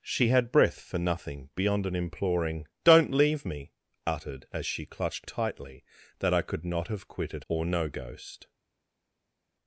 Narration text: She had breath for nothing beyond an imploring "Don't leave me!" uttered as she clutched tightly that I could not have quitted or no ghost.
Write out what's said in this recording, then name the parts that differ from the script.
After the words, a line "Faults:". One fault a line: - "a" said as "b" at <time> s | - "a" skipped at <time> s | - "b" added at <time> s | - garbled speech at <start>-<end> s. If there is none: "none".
She had breath for nothing beyond an imploring "Don't leave me!" uttered as she clutched tightly that I could not have quitted or no ghost.
Faults:
none